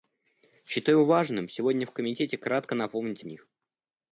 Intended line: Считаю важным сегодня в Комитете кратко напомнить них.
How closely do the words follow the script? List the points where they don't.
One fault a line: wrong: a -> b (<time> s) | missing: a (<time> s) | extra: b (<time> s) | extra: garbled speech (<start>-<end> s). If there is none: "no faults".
no faults